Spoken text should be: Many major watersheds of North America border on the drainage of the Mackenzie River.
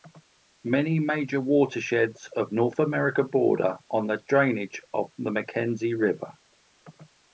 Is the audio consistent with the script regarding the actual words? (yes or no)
yes